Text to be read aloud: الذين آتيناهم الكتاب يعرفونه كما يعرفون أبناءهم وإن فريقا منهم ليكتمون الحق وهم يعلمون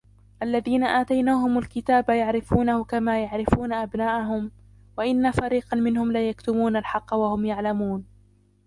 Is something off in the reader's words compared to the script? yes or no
no